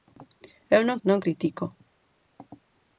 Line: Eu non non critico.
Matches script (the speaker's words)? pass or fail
pass